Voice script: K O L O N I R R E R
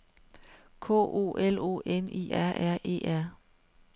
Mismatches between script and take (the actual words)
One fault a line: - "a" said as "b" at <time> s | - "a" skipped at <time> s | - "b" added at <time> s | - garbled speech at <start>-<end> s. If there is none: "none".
none